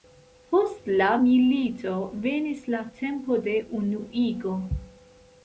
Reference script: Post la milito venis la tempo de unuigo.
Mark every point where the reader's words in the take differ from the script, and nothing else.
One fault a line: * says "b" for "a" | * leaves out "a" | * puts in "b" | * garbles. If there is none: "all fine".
all fine